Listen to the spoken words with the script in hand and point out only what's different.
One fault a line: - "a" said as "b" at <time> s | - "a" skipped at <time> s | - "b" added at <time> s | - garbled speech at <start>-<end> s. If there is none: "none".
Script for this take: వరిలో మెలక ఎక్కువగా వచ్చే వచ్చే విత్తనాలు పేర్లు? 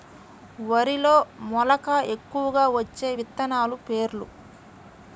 - "వచ్చే" skipped at 3.1 s